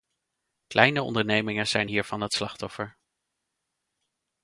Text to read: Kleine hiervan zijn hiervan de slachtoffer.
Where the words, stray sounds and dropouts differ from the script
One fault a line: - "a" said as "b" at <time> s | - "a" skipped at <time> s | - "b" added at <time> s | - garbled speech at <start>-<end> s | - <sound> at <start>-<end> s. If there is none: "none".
- "hiervan" said as "ondernemingen" at 1.0 s
- "de" said as "het" at 2.2 s